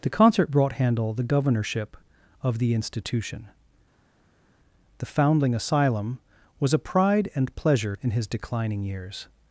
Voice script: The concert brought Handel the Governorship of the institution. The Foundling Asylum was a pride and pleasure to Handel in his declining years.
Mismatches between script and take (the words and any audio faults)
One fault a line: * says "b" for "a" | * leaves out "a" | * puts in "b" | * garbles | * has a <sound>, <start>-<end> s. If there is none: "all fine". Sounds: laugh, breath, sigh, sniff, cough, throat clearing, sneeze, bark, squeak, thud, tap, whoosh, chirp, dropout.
* leaves out "to Handel"